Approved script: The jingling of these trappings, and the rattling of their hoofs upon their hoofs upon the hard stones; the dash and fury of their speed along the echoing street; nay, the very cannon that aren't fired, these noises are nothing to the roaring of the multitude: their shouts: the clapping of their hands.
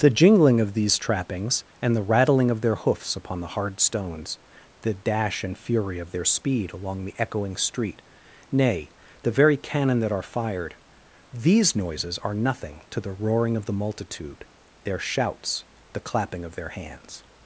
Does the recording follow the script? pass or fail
fail